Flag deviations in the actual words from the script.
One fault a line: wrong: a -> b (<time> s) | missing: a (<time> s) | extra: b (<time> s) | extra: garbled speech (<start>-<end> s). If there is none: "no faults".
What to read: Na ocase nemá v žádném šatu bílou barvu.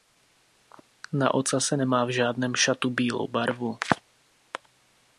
no faults